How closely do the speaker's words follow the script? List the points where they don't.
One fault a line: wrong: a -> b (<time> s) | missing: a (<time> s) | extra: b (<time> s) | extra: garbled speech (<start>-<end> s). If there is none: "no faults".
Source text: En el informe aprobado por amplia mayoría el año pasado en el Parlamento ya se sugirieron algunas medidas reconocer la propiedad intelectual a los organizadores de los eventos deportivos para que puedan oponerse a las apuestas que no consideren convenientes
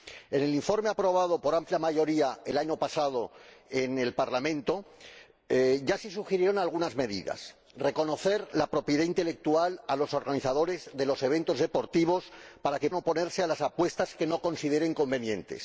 missing: puedan (12.9 s)